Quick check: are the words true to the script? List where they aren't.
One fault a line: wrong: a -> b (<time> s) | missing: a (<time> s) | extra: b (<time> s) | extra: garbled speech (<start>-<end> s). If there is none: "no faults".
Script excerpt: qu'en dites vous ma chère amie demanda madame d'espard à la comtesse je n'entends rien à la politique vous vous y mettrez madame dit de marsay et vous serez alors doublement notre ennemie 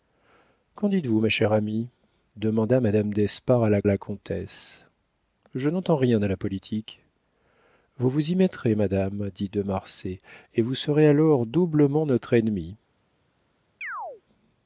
extra: la (3.8 s)